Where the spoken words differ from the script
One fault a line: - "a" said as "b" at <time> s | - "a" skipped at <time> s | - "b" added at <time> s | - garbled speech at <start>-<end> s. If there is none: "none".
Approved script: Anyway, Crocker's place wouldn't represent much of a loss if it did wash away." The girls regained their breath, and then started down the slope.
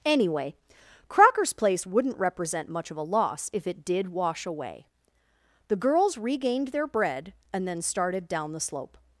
- "breath" said as "bread" at 6.9 s